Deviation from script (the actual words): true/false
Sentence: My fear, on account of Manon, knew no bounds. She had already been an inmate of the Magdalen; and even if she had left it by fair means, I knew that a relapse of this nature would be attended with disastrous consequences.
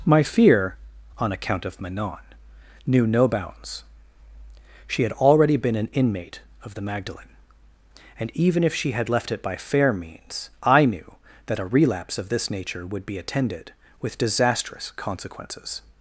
false